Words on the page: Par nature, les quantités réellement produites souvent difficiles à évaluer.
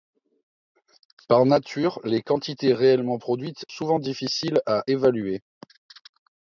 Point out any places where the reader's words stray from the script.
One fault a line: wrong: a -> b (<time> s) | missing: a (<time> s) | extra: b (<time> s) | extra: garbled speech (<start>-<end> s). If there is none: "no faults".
no faults